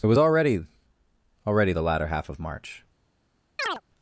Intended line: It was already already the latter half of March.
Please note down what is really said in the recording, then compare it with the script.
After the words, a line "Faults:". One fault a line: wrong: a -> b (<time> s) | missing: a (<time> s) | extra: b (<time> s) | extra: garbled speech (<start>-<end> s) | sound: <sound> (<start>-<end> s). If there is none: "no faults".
It was already already the latter half of March.
Faults:
sound: chirp (3.6-3.8 s)